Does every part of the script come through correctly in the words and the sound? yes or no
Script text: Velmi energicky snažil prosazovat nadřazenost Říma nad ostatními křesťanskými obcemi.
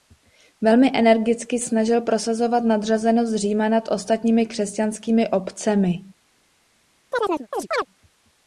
no